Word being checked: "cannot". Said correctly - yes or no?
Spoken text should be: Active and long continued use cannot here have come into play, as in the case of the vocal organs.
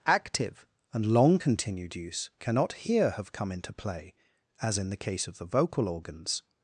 yes